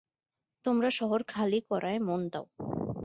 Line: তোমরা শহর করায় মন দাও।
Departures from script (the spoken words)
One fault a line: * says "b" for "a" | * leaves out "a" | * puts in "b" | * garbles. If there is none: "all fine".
* puts in "খালি"